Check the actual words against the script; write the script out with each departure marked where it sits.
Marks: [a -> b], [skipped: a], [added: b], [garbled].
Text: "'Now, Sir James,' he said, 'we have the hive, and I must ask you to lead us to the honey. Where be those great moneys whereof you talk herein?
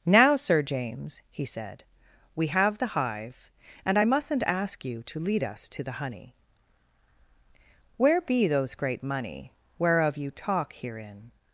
"'Now, Sir James,' he said, 'we have the hive, and I [must -> mustn't] ask you to lead us to the honey. Where be those great [moneys -> money] whereof you talk herein?